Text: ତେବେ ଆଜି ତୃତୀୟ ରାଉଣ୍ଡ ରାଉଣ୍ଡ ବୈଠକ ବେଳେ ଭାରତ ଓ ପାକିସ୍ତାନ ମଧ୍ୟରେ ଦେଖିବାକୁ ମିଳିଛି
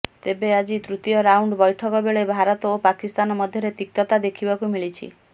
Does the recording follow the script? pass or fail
fail